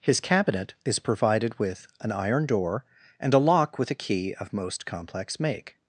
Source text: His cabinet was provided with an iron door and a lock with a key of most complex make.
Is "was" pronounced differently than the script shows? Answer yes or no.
yes